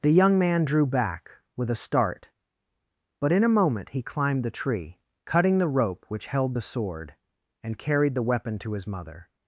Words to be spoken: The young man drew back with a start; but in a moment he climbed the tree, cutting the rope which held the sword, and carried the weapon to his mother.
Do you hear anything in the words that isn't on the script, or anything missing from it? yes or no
no